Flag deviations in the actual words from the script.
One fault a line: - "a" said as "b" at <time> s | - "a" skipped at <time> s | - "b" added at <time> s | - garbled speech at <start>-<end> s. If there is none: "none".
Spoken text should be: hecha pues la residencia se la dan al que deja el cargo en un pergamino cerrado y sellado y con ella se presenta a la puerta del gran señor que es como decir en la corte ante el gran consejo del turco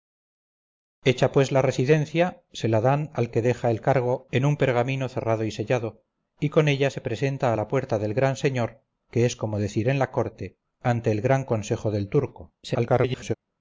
- garbled speech at 12.6-13.3 s